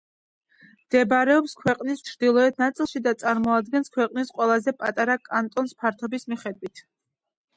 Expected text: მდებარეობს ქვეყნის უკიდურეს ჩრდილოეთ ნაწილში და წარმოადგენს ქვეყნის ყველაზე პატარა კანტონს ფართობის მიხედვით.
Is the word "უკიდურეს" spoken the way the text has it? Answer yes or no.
no